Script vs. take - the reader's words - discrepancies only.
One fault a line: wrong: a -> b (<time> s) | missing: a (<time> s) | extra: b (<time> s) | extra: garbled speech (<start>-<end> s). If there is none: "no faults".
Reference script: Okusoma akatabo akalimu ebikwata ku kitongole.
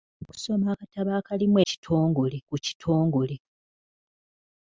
wrong: ebikwata -> kitongole (1.7 s)